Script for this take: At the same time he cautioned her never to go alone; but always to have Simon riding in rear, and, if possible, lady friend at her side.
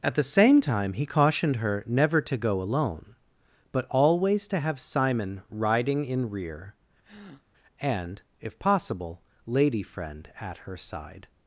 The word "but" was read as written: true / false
true